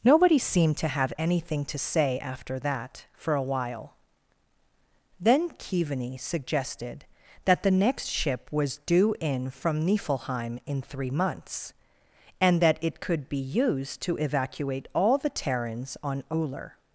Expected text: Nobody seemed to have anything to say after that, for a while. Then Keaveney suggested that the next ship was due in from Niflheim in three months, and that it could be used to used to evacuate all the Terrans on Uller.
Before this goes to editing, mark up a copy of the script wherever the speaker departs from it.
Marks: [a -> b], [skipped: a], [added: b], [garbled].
Nobody seemed to have anything to say after that, for a while. Then Keaveney suggested that the next ship was due in from Niflheim in three months, and that it could be used to [skipped: used to] evacuate all the Terrans on Uller.